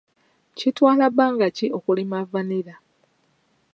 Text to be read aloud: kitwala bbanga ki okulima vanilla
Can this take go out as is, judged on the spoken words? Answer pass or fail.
pass